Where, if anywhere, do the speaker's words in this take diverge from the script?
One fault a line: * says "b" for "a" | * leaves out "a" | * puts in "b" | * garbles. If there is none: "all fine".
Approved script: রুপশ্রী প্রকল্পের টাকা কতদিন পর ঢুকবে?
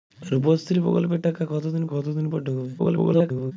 * puts in "কতদিন"
* garbles